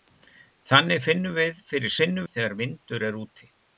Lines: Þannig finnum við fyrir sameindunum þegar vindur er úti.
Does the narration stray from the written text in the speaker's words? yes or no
yes